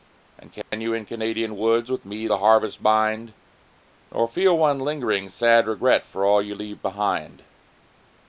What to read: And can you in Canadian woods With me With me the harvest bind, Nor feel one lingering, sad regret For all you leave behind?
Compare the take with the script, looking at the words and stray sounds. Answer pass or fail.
fail